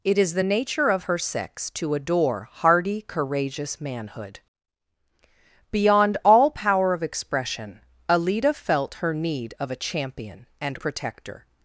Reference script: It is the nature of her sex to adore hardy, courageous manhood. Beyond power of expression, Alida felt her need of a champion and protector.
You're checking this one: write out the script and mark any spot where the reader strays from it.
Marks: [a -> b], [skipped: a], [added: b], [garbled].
It is the nature of her sex to adore hardy, courageous manhood. Beyond [added: all] power of expression, Alida felt her need of a champion and protector.